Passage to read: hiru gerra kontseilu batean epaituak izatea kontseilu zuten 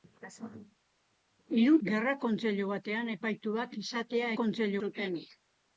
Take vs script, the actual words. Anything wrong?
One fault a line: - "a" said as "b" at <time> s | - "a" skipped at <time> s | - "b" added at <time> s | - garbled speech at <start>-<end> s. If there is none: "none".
none